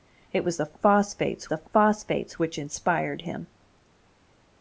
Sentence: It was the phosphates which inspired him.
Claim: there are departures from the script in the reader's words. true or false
true